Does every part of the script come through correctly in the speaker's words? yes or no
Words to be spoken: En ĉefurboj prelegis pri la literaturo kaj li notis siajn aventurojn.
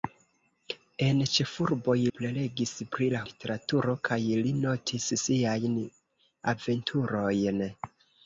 yes